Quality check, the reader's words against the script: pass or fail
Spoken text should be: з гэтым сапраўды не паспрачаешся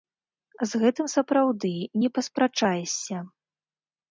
pass